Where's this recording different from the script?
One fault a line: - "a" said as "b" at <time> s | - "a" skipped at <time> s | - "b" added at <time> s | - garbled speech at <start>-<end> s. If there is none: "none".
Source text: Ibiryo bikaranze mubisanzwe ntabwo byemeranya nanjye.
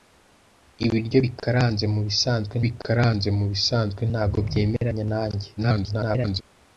- "bikaranze mubisanzwe" added at 2.6 s
- garbled speech at 5.6-6.4 s